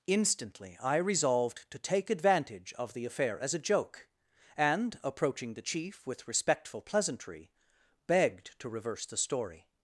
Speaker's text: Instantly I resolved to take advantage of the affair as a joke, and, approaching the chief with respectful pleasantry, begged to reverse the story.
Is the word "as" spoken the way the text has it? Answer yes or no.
yes